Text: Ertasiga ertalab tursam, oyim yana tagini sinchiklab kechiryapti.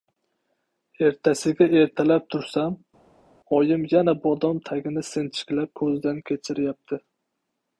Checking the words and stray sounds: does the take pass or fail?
fail